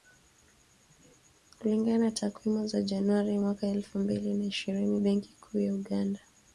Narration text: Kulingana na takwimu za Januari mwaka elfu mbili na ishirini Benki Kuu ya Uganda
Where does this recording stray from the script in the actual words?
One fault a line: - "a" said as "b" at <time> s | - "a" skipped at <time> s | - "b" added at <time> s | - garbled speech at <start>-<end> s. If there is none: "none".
none